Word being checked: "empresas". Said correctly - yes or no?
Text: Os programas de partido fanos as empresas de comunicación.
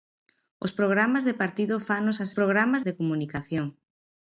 no